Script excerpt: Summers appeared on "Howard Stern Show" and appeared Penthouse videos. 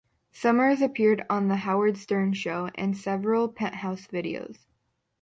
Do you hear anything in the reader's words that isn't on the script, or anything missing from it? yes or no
yes